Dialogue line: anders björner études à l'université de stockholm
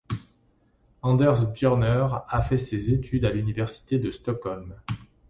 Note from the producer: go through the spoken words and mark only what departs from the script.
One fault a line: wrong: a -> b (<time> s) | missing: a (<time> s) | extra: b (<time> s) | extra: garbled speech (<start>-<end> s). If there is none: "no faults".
extra: a fait ses (2.3 s)